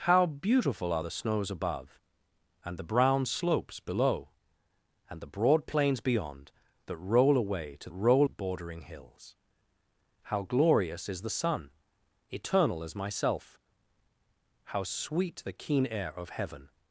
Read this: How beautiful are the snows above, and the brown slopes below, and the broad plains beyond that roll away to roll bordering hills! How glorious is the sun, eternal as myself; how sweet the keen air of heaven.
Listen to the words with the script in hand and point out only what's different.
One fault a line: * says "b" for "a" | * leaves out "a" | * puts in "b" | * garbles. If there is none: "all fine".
all fine